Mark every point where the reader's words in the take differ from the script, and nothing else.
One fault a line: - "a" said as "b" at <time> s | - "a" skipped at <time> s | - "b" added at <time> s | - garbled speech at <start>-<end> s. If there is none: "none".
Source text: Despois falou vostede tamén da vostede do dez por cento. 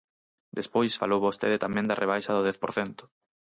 - "vostede" said as "rebaixa" at 2.0 s